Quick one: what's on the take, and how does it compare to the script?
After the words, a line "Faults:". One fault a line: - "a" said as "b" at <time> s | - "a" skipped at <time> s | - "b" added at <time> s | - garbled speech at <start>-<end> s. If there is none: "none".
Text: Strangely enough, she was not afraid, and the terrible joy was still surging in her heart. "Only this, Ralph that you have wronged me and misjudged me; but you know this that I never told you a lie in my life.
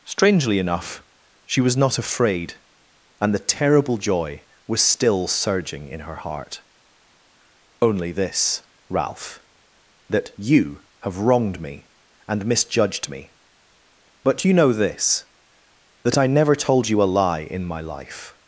Strangely enough, she was not afraid, and the terrible joy was still surging in her heart. "Only this, Ralph that you have wronged me and misjudged me; but you know this that I never told you a lie in my life.
Faults:
none